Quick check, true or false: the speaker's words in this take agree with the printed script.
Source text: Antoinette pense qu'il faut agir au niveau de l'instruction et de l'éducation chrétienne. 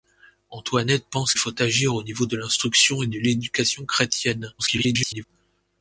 false